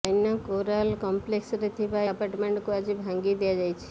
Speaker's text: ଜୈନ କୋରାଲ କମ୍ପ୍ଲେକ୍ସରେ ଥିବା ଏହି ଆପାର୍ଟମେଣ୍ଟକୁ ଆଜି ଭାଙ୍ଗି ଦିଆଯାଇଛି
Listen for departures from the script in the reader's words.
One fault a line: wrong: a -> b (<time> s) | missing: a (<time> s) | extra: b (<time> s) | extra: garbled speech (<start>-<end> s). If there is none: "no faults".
missing: ଏହି (2.0 s)